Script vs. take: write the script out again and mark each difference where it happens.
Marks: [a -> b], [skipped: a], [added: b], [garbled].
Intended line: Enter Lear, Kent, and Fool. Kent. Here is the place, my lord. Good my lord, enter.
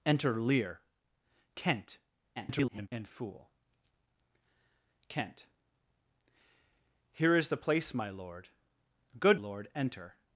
Enter Lear, Kent, [garbled] and Fool. Kent. Here is the place, my lord. Good [skipped: my] lord, enter.